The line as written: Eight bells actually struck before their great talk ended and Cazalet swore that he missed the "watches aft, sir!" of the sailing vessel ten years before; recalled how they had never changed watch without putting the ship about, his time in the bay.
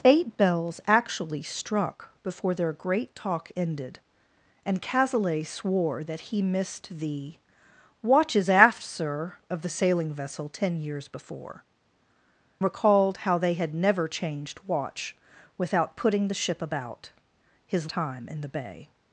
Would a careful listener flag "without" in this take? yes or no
no